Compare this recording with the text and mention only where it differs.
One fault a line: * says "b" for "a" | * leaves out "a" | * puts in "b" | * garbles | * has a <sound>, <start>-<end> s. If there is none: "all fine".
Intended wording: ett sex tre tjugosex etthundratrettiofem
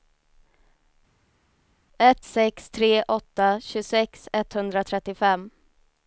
* puts in "åtta"